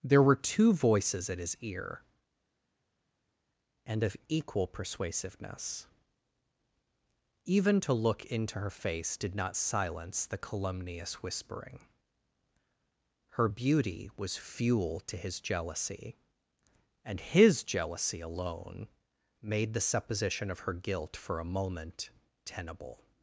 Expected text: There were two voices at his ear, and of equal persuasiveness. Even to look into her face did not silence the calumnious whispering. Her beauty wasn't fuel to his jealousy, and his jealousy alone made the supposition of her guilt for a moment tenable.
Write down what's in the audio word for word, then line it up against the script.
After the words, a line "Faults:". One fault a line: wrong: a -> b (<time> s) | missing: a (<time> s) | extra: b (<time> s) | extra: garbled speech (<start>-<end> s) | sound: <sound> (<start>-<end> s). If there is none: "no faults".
There were two voices at his ear, and of equal persuasiveness. Even to look into her face did not silence the calumnious whispering. Her beauty was fuel to his jealousy, and his jealousy alone made the supposition of her guilt for a moment tenable.
Faults:
wrong: wasn't -> was (14.2 s)